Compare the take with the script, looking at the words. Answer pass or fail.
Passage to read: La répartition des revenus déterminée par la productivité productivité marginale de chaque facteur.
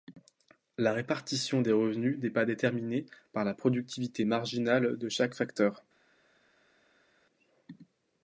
fail